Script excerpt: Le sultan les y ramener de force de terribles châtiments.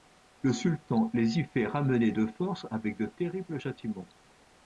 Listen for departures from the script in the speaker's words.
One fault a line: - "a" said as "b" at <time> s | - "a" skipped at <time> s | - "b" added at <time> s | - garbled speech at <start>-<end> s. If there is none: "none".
- "fait" added at 1.4 s
- "avec" added at 2.7 s